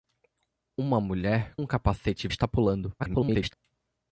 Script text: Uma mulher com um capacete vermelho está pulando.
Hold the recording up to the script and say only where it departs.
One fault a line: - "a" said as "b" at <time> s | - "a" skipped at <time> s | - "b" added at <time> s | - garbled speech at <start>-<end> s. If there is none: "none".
- "com" skipped at 1.6 s
- "vermelho" skipped at 2.3 s
- garbled speech at 3.0-3.5 s